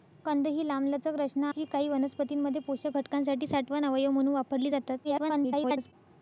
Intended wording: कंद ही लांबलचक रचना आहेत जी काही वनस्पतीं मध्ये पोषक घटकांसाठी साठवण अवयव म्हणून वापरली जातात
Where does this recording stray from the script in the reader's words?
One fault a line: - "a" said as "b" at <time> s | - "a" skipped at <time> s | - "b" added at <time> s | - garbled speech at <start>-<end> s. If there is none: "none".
- "आहेत" skipped at 1.5 s
- garbled speech at 5.0-5.9 s